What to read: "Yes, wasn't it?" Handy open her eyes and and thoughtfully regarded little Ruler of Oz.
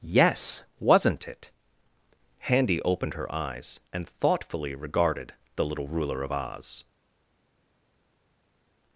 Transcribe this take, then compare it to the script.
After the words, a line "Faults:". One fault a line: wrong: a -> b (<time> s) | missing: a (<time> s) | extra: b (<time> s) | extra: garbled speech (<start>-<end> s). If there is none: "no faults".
"Yes, wasn't it?" Handy opened her eyes and thoughtfully regarded the little Ruler of Oz.
Faults:
wrong: open -> opened (2.8 s)
missing: and (4.1 s)
extra: the (5.5 s)